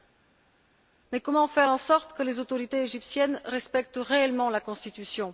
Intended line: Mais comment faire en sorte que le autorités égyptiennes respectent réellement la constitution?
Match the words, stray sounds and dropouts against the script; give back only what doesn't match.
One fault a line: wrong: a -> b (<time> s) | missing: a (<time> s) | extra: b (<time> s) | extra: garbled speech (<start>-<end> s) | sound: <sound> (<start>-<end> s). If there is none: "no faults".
wrong: le -> les (2.2 s)